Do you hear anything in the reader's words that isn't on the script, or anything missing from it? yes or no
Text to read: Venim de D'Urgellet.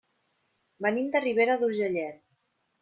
yes